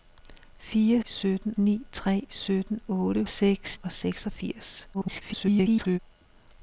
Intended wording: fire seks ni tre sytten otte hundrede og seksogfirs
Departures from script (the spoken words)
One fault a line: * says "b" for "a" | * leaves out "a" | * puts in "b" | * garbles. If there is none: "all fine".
* says "sytten" for "seks"
* says "seks" for "hundrede"
* garbles